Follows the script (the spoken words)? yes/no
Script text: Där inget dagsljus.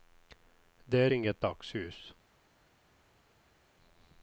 yes